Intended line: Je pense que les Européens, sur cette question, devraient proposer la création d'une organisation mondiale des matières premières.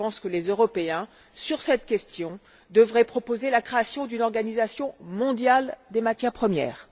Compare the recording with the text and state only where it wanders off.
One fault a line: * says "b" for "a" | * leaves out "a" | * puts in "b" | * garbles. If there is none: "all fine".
all fine